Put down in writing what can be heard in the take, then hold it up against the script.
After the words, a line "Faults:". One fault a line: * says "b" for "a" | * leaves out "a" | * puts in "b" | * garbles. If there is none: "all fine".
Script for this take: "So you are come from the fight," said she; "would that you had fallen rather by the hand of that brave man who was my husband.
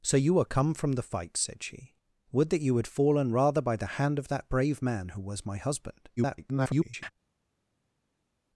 "So you are come from the fight," said she; "would that you had fallen rather by the hand of that brave man who was my husband. [garbled]
Faults:
* garbles